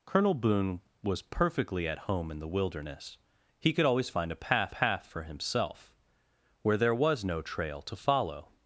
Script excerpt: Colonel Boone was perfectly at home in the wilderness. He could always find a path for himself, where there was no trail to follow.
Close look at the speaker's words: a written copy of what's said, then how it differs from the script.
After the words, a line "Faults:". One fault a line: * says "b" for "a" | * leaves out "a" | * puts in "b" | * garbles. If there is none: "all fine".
Colonel Boone was perfectly at home in the wilderness. He could always find a path path for himself, where there was no trail to follow.
Faults:
* puts in "path"